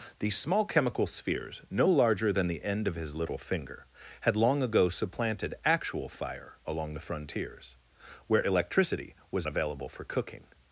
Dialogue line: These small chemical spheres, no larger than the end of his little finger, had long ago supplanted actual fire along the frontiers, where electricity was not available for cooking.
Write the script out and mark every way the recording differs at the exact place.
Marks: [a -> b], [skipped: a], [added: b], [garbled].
These small chemical spheres, no larger than the end of his little finger, had long ago supplanted actual fire along the frontiers, where electricity was [skipped: not] available for cooking.